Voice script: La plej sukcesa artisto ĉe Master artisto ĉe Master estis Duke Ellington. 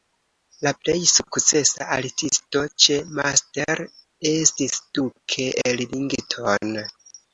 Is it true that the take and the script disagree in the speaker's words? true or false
true